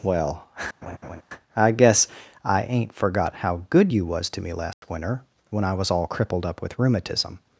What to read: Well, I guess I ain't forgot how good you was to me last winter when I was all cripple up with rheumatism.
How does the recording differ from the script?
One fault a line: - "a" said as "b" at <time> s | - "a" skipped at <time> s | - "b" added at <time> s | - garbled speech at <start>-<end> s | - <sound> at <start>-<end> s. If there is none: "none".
- laugh at 0.8-1.2 s
- dropout at 4.7-4.8 s
- "cripple" said as "crippled" at 6.1 s